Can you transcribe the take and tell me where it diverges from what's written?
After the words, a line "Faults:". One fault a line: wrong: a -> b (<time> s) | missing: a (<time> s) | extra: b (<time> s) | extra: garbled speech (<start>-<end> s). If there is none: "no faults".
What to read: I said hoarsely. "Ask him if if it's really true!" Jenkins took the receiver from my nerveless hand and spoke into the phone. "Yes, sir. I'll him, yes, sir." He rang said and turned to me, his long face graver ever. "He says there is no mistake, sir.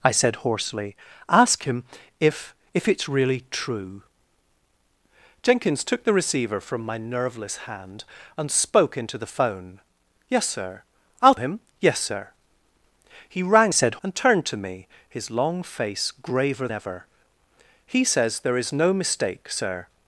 I said hoarsely. "Ask him if if it's really true!" Jenkins took the receiver from my nerveless hand and spoke into the phone. "Yes, sir. I'll him, yes, sir." He rang said and turned to me, his long face graver ever. "He says there is no mistake, sir.
Faults:
no faults